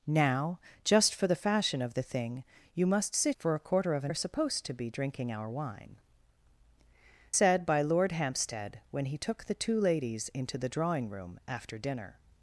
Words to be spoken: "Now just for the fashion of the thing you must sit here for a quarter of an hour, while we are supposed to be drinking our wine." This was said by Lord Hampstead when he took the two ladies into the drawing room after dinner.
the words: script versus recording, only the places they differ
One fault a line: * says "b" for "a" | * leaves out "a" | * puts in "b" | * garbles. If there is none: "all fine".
* leaves out "here"
* leaves out "hour while we"
* leaves out "This was"